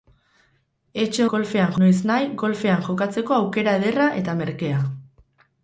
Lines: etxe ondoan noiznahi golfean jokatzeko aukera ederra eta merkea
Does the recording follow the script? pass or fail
fail